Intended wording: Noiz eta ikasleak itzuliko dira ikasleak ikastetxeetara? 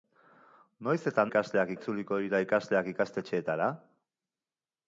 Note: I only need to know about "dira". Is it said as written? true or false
true